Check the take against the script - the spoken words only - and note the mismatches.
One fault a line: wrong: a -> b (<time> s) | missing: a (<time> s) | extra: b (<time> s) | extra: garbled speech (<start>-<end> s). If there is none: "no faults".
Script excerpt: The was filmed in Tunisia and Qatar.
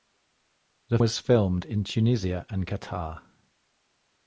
no faults